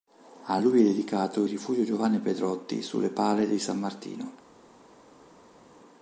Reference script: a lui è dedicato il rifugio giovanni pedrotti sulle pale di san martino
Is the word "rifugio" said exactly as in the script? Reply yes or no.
yes